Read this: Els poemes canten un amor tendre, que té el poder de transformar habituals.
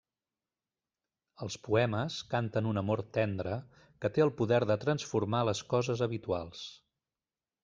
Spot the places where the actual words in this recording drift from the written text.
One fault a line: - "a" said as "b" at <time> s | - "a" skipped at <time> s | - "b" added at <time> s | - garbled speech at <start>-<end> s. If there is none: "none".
- "les coses" added at 5.5 s